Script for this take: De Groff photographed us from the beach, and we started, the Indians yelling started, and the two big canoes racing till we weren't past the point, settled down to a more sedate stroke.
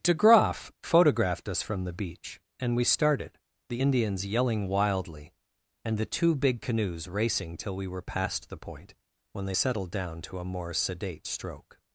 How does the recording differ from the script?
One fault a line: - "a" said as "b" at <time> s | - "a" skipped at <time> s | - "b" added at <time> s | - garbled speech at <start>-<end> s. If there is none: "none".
- "started" said as "wildly" at 4.7 s
- "weren't" said as "were" at 7.9 s
- "when they" added at 9.3 s